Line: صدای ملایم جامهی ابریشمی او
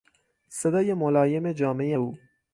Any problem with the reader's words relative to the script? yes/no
yes